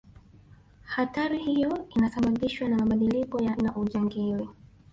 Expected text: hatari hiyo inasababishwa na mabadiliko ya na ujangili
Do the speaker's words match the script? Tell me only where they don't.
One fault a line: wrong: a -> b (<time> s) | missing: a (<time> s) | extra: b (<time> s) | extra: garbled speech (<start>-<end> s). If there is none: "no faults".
no faults